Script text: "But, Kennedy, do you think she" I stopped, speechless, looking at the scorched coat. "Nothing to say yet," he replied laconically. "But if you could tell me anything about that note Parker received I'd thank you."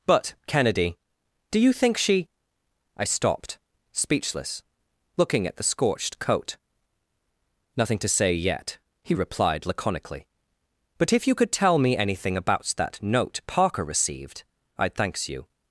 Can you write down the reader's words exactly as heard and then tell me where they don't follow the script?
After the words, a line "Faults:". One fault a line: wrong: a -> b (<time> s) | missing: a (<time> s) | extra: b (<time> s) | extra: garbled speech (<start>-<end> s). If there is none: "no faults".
"But, Kennedy, do you think she" I stopped, speechless, looking at the scorched coat. "Nothing to say yet," he replied laconically. "But if you could tell me anything about that note Parker received I'd thanks you."
Faults:
wrong: thank -> thanks (14.9 s)